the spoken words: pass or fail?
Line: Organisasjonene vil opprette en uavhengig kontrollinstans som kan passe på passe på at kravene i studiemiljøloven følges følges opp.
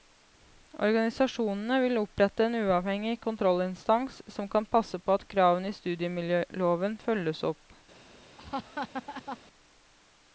fail